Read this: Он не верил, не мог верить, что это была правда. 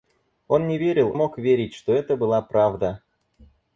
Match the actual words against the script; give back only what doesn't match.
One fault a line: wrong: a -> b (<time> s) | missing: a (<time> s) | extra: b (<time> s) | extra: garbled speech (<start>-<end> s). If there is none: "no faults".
missing: не (1.1 s)